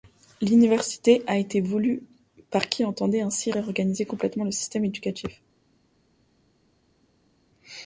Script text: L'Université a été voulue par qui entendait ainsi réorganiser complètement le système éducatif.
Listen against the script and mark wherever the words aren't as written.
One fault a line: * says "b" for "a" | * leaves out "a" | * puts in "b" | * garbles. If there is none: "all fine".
all fine